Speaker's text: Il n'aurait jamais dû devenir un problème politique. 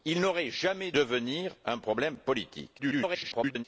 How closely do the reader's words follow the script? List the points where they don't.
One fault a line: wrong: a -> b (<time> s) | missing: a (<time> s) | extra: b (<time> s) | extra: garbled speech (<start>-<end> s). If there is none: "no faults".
missing: dû (0.9 s)
extra: garbled speech (2.8-3.6 s)